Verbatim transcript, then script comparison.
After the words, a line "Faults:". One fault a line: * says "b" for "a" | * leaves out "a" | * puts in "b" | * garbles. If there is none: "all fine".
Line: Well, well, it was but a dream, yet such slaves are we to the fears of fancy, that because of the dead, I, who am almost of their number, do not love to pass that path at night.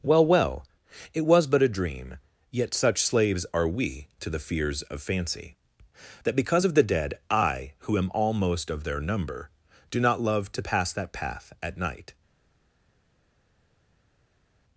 Well, well, it was but a dream, yet such slaves are we to the fears of fancy, that because of the dead, I, who am almost of their number, do not love to pass that path at night.
Faults:
all fine